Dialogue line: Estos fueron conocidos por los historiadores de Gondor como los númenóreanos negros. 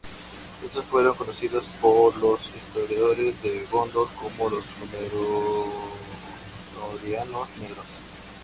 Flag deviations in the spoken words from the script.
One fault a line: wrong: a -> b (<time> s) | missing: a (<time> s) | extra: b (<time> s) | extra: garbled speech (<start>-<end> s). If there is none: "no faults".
no faults